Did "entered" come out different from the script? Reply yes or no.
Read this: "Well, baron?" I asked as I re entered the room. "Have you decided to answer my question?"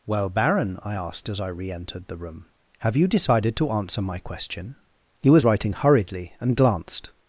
no